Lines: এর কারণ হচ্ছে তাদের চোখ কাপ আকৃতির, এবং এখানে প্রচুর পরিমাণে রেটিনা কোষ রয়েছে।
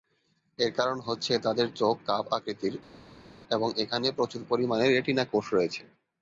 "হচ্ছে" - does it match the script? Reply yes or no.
yes